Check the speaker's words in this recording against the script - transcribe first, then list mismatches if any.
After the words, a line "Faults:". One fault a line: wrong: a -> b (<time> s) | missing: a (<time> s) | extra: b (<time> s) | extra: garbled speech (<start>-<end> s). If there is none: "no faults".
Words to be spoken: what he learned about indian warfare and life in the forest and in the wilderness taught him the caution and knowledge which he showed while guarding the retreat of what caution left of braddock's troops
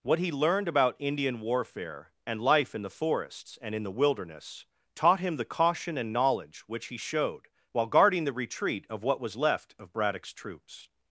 what he learned about indian warfare and life in the forests and in the wilderness taught him the caution and knowledge which he showed while guarding the retreat of what was left of braddock's troops
Faults:
wrong: forest -> forests (2.9 s)
wrong: caution -> was (9.2 s)